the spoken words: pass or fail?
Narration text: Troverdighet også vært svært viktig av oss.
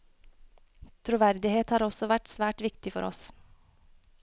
fail